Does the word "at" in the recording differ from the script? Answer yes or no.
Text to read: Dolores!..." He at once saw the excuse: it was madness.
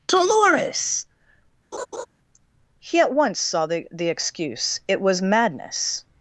no